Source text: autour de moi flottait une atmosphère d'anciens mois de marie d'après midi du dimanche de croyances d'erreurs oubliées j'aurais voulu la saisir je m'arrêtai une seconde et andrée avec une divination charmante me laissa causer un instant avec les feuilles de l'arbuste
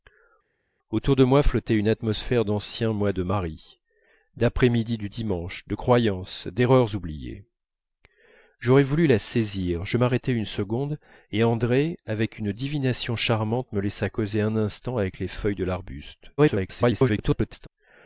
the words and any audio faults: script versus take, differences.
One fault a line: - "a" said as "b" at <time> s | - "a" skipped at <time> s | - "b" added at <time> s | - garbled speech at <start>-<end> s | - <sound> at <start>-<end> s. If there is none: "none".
- garbled speech at 16.4-17.7 s